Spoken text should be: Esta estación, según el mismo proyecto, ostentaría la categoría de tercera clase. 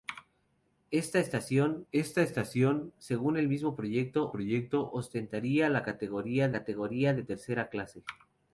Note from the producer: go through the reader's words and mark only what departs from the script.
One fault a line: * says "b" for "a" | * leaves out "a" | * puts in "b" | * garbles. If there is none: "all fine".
* puts in "esta estación"
* puts in "proyecto"
* puts in "categoría"